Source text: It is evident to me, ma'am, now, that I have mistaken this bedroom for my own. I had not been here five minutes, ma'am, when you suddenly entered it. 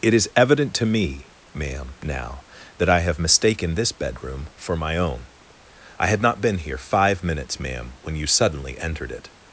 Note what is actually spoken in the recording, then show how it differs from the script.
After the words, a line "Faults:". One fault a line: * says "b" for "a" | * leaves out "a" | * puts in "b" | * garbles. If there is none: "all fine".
It is evident to me, ma'am, now, that I have mistaken this bedroom for my own. I had not been here five minutes, ma'am, when you suddenly entered it.
Faults:
all fine